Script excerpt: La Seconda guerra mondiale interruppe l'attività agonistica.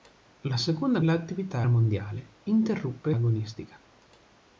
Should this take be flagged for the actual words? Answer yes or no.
yes